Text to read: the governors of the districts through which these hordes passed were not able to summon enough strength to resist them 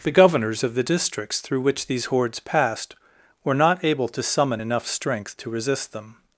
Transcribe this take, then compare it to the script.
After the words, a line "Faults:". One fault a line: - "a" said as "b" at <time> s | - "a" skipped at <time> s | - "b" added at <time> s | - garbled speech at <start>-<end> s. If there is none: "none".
the governors of the districts through which these hordes passed were not able to summon enough strength to resist them
Faults:
none